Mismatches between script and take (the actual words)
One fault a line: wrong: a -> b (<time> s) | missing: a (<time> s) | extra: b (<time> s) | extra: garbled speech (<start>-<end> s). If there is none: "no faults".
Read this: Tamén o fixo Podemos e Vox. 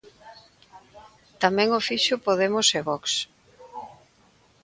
no faults